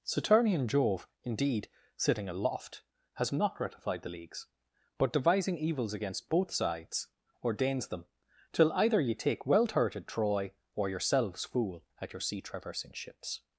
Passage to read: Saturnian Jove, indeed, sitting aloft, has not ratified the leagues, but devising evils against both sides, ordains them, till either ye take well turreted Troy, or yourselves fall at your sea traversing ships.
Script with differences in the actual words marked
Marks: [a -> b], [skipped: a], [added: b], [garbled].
Saturnian Jove, indeed, sitting aloft, has not ratified the leagues, but devising evils against both sides, ordains them, till either ye take well turreted Troy, or yourselves [fall -> fool] at your sea traversing ships.